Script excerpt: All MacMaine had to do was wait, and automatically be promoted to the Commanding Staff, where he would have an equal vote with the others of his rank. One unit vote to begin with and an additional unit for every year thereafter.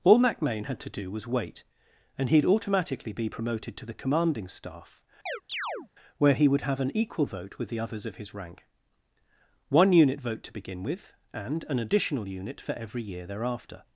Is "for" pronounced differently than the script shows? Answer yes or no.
no